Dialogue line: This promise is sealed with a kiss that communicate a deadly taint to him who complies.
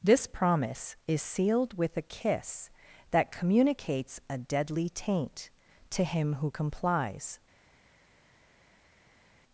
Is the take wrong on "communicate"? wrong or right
wrong